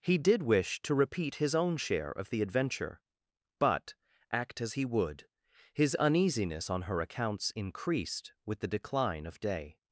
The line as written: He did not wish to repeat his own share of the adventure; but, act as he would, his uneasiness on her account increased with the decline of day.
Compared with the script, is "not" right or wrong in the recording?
wrong